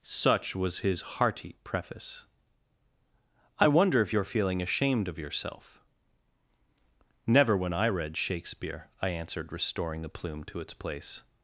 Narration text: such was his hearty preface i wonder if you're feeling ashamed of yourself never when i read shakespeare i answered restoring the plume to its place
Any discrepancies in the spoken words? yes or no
no